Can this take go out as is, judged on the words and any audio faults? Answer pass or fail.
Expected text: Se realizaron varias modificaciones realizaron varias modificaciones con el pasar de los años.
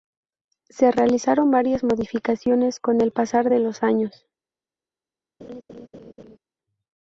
fail